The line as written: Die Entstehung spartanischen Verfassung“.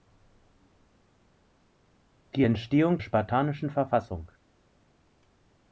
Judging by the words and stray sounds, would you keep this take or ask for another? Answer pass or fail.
pass